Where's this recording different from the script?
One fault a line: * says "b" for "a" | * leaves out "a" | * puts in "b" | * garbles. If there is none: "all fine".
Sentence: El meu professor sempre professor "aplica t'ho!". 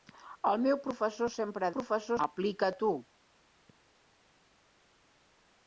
all fine